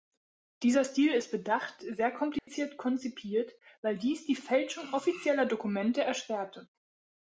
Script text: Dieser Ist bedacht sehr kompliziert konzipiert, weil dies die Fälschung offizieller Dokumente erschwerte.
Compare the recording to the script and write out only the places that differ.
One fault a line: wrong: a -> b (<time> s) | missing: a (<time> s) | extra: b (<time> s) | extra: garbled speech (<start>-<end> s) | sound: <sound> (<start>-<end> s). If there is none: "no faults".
extra: Stil (0.8 s)
sound: dropout (2.4-2.5 s)